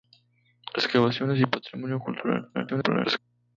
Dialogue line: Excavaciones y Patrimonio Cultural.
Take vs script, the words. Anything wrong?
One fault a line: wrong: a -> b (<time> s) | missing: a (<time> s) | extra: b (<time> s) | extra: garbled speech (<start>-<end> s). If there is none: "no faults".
extra: garbled speech (2.5-3.2 s)